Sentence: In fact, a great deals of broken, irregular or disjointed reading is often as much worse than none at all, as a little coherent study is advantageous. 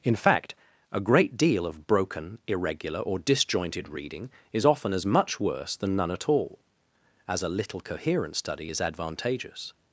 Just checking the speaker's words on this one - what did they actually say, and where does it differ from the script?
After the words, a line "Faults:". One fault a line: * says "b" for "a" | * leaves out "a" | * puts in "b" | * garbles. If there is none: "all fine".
In fact, a great deal of broken, irregular or disjointed reading is often as much worse than none at all, as a little coherent study is advantageous.
Faults:
* says "deal" for "deals"